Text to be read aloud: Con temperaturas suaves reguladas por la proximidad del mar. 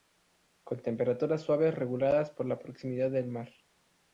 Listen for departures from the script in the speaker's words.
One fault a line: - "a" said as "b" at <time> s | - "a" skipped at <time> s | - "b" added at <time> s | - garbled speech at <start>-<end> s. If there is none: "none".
none